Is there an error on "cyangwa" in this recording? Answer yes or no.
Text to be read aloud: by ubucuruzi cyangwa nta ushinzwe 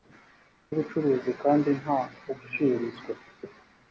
yes